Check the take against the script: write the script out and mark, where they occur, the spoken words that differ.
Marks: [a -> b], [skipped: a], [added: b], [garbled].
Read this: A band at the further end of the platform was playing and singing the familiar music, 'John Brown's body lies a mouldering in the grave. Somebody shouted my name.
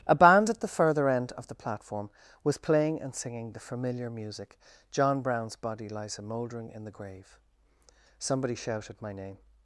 A band at the further end of the platform was playing and singing the familiar music, 'John Brown's body lies a mouldering in the grave. Somebody shouted my name.